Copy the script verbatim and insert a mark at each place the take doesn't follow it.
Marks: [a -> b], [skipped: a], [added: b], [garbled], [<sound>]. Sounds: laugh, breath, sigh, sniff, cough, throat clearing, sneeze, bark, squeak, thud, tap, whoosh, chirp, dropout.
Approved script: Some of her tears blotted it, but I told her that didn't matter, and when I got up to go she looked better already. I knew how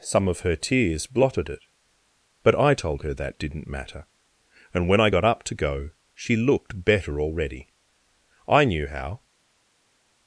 Some of her tears blotted it, but I told her that didn't matter, and when I got up to go she looked better already. I knew how